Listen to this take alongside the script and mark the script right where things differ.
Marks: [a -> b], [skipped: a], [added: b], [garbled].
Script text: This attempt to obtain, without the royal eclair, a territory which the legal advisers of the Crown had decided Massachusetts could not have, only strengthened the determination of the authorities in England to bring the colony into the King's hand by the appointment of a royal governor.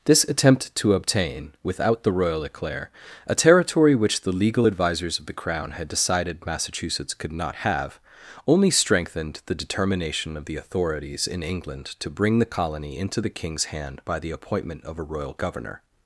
This attempt to obtain, without the royal eclair, a territory which the legal advisers of the Crown had decided Massachusetts could not have, only strengthened the determination of the authorities in England to bring the colony into the King's hand by the appointment of a royal governor.